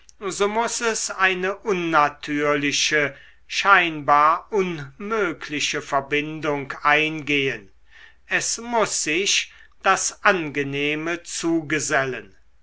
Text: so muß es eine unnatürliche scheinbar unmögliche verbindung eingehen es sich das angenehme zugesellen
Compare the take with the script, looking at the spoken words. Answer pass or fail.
fail